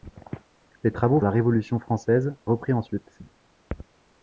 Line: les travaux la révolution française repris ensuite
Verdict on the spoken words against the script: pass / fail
pass